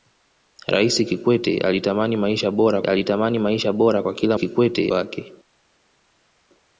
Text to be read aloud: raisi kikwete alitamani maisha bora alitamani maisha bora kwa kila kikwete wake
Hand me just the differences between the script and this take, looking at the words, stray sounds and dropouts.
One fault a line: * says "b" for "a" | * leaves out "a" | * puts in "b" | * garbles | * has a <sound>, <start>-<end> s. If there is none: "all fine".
all fine